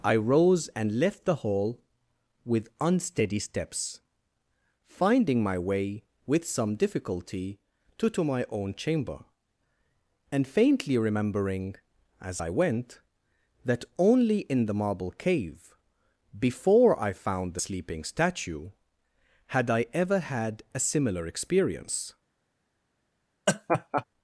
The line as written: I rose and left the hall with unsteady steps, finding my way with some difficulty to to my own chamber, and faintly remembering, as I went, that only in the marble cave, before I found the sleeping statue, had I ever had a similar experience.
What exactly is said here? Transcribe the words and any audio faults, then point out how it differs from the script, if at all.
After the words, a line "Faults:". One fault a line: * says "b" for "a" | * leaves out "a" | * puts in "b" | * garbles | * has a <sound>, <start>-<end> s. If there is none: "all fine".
I rose and left the hall with unsteady steps, finding my way with some difficulty to to my own chamber, and faintly remembering, as I went, that only in the marble cave, before I found the sleeping statue, had I ever had a similar experience.
Faults:
* has a laugh, 23.5-24.0 s